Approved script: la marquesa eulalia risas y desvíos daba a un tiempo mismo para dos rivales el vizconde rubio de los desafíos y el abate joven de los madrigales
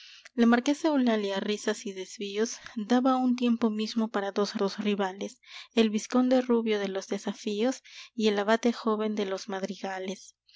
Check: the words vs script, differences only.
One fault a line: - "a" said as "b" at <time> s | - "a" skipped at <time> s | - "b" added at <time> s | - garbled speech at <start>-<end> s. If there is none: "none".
- "dos" added at 4.5 s